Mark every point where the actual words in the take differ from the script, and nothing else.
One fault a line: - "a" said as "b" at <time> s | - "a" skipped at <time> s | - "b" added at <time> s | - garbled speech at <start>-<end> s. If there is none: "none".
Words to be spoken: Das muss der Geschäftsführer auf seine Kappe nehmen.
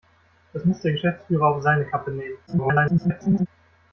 - garbled speech at 2.5-3.5 s